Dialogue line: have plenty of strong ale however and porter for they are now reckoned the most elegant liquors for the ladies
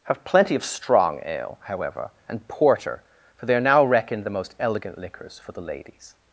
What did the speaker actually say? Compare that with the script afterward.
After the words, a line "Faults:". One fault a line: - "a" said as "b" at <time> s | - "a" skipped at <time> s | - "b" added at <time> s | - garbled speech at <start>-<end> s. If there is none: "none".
have plenty of strong ale however and porter for they are now reckoned the most elegant liquors for the ladies
Faults:
none